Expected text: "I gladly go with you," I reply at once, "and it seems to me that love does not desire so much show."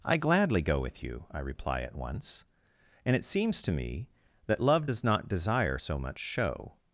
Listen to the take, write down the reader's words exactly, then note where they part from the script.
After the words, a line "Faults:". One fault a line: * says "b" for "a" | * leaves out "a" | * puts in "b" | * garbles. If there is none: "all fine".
"I gladly go with you," I reply at once, "and it seems to me that love does not desire so much show."
Faults:
all fine